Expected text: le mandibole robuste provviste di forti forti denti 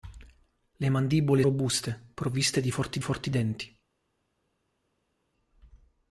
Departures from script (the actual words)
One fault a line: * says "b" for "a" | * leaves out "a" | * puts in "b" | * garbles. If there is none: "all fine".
all fine